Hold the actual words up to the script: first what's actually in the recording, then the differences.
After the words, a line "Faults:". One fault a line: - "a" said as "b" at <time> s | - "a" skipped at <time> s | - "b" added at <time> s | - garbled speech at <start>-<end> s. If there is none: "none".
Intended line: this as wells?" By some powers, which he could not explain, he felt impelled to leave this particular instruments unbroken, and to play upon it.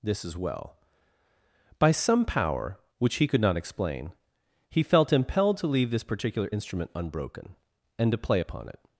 this as well?" By some power, which he could not explain, he felt impelled to leave this particular instrument unbroken, and to play upon it.
Faults:
- "wells" said as "well" at 0.4 s
- "powers" said as "power" at 2.2 s
- "instruments" said as "instrument" at 6.5 s